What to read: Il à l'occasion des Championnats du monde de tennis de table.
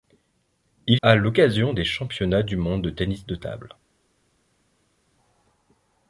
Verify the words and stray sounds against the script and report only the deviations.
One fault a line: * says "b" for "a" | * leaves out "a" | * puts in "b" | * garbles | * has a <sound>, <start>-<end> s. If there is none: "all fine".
all fine